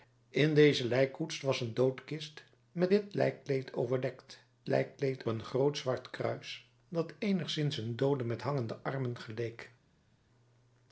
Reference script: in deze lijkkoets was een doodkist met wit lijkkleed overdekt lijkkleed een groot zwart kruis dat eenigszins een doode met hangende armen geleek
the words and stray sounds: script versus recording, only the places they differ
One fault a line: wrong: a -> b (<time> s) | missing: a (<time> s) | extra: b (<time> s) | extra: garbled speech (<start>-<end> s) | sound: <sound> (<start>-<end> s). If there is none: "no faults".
no faults